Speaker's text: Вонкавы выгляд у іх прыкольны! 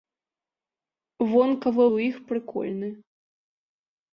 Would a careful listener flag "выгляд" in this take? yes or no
yes